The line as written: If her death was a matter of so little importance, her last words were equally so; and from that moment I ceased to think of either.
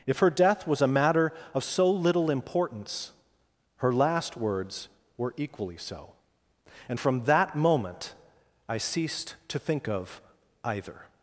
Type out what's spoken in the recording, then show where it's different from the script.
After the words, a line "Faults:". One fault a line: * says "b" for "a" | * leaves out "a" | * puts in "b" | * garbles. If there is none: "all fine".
If her death was a matter of so little importance, her last words were equally so; and from that moment I ceased to think of either.
Faults:
all fine